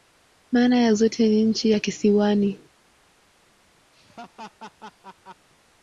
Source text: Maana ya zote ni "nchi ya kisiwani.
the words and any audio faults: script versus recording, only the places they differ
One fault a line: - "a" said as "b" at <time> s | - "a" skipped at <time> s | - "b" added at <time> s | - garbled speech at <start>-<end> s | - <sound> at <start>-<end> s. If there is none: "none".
- laugh at 3.9-5.5 s